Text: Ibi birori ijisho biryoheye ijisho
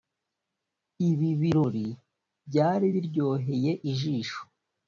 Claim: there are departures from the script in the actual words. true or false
true